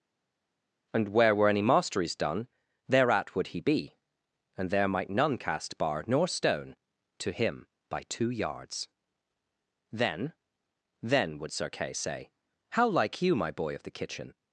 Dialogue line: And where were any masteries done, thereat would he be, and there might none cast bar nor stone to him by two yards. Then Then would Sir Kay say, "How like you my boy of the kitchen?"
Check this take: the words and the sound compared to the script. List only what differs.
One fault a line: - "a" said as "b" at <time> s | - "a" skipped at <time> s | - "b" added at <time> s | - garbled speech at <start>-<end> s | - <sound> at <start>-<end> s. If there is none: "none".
none